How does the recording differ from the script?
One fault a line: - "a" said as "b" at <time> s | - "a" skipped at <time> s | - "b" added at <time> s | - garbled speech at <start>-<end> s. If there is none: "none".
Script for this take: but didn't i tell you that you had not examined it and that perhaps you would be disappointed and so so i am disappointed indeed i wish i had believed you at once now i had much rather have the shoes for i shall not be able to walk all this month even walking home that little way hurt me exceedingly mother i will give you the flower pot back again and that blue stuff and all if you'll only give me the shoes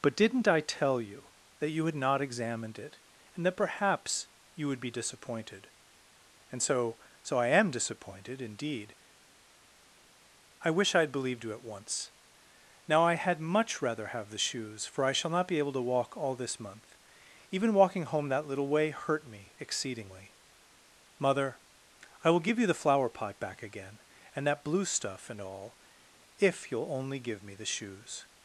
none